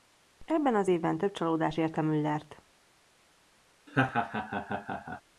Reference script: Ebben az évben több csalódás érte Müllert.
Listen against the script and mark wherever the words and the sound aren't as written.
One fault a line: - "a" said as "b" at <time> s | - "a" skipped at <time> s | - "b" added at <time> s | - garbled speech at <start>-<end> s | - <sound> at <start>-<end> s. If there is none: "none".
- laugh at 3.9-5.2 s